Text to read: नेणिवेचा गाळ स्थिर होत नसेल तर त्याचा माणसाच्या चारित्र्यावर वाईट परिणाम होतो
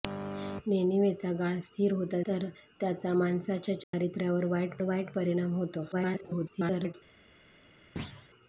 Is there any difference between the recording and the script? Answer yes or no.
yes